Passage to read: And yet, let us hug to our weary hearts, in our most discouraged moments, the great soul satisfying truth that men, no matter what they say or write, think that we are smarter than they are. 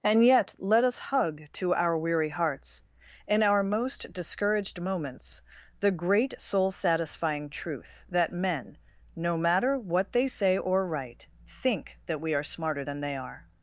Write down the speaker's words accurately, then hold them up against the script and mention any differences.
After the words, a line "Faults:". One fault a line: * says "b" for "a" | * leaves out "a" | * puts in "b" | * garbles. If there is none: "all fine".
And yet, let us hug to our weary hearts, in our most discouraged moments, the great soul satisfying truth that men, no matter what they say or write, think that we are smarter than they are.
Faults:
all fine